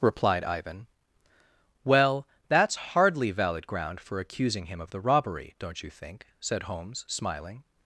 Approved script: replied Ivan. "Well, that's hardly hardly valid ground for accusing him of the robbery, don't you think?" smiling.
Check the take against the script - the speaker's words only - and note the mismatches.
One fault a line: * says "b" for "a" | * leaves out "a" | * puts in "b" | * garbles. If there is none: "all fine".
* leaves out "hardly"
* puts in "said Holmes"